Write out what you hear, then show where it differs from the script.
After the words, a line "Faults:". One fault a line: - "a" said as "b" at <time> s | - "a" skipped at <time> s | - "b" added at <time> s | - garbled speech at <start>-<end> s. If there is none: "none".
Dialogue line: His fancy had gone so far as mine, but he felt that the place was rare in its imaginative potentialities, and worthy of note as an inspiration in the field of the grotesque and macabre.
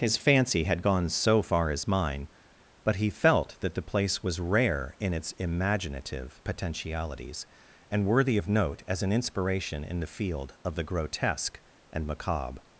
His fancy had gone so far as mine, but he felt that the place was rare in its imaginative potentialities, and worthy of note as an inspiration in the field of the grotesque and macabre.
Faults:
none